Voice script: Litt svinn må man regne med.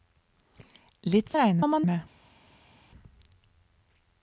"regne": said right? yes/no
no